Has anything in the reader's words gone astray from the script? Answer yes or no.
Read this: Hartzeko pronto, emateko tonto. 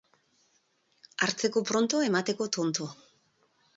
no